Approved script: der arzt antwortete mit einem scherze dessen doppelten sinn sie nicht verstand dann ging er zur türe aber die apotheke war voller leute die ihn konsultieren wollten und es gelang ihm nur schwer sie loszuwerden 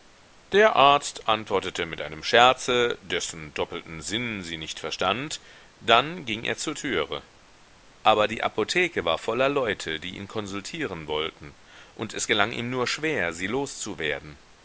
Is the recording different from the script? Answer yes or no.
no